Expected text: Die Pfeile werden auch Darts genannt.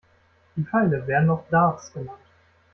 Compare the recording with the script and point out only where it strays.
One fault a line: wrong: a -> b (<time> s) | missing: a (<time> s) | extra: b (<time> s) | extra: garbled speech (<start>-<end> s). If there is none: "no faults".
no faults